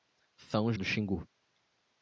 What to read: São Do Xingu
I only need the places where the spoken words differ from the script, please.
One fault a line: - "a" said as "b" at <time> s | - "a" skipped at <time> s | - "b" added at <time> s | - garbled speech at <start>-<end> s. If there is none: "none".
none